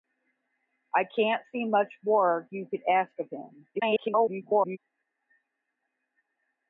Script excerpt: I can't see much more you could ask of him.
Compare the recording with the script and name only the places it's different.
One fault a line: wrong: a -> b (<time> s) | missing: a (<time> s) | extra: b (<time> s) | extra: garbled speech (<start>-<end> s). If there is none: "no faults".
extra: garbled speech (3.7-4.8 s)